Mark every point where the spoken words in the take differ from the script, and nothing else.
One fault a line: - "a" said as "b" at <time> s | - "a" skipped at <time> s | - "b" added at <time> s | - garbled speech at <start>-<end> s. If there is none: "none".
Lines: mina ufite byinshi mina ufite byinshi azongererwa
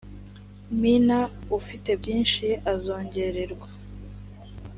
- "mina ufite byinshi" skipped at 2.5 s